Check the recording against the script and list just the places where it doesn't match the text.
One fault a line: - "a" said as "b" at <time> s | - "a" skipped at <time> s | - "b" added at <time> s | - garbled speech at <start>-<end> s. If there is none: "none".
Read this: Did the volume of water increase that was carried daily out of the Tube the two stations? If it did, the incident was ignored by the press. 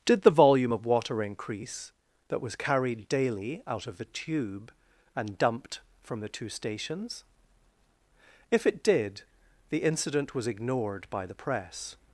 - "and dumped from" added at 5.2 s